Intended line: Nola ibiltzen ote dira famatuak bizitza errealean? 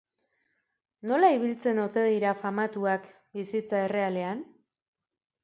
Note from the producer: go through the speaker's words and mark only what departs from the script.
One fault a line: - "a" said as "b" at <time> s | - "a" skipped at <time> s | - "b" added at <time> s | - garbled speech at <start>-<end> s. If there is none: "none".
none